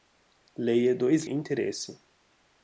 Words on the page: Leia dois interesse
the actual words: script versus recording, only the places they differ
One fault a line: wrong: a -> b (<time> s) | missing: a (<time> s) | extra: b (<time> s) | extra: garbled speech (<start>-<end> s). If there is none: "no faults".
no faults